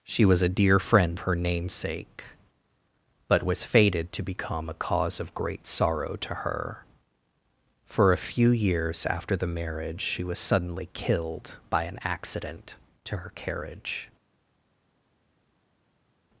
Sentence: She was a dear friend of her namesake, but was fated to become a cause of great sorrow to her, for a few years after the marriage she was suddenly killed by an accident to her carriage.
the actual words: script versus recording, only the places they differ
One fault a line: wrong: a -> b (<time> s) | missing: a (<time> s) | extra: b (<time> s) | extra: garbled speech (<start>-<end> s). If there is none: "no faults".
missing: of (1.2 s)